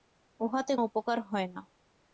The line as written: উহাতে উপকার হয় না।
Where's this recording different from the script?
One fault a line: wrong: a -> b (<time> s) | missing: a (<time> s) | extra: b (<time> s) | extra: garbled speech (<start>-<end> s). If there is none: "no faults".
no faults